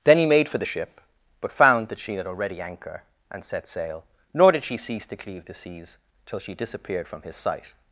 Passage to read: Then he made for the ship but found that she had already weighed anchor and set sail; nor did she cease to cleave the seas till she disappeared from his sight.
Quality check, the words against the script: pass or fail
fail